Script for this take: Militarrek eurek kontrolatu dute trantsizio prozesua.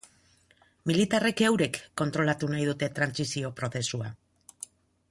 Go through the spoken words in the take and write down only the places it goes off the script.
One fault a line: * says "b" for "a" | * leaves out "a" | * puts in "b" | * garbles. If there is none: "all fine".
* puts in "nahi"